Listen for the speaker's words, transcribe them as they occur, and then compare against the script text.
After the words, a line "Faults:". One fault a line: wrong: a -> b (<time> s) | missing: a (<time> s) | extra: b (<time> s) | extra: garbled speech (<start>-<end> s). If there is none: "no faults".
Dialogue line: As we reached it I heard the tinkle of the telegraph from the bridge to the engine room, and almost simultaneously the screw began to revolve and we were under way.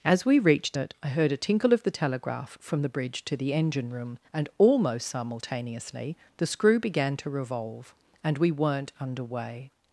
As we reached it I heard a tinkle of the telegraph from the bridge to the engine room, and almost simultaneously the screw began to revolve and we weren't under way.
Faults:
wrong: the -> a (1.3 s)
wrong: were -> weren't (8.5 s)